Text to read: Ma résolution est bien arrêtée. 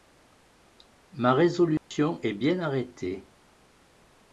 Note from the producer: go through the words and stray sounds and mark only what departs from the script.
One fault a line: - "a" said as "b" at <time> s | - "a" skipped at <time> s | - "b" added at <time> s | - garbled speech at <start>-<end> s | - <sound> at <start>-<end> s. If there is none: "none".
- dropout at 1.8-1.9 s